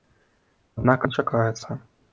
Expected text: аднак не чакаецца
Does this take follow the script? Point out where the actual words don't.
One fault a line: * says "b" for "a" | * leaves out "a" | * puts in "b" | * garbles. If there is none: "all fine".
all fine